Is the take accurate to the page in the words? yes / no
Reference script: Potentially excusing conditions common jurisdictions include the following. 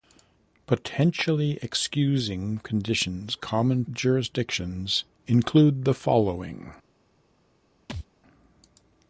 yes